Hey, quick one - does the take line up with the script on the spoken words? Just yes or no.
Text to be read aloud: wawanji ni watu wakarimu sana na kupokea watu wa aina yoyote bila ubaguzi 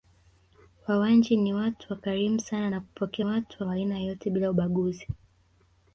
yes